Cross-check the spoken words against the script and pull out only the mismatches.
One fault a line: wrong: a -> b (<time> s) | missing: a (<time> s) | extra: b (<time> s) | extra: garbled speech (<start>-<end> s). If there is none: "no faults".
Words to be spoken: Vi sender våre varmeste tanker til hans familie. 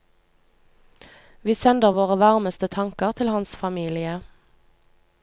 no faults